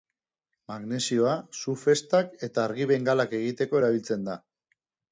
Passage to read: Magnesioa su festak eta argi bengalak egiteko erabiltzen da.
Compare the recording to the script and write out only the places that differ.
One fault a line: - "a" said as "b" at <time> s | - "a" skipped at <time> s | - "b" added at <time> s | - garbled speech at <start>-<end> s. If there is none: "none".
none